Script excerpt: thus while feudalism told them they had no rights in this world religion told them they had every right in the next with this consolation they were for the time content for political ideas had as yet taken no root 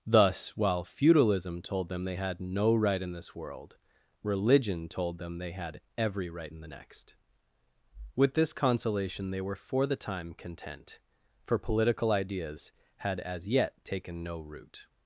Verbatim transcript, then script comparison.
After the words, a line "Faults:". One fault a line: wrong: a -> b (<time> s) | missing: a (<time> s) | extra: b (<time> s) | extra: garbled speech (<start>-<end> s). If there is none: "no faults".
thus while feudalism told them they had no right in this world religion told them they had every right in the next with this consolation they were for the time content for political ideas had as yet taken no root
Faults:
wrong: rights -> right (2.7 s)